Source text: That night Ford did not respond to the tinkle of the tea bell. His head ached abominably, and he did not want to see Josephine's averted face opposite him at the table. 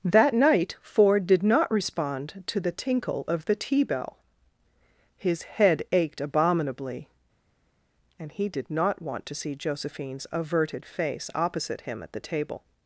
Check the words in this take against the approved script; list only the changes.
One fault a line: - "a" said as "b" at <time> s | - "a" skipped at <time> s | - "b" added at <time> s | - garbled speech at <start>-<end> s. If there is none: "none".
none